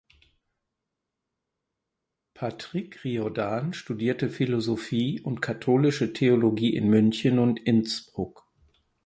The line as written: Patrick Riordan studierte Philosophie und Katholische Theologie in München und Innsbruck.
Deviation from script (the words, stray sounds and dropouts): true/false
false